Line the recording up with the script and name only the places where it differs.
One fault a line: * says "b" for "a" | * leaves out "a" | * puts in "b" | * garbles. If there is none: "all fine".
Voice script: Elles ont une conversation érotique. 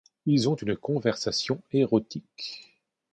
* says "Ils" for "Elles"